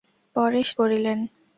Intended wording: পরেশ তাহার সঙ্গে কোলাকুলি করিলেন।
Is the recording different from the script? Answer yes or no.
yes